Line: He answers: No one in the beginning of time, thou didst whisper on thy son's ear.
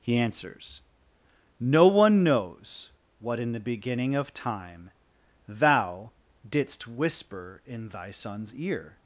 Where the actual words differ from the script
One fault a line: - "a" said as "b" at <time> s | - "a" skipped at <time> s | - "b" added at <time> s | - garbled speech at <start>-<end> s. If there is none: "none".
- "knows What" added at 2.2 s
- "on" said as "in" at 7.7 s